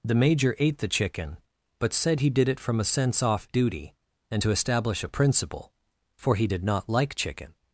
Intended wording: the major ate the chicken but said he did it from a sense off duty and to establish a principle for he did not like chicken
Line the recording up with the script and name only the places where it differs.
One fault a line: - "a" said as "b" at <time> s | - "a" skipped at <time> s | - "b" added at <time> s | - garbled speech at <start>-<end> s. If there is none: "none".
none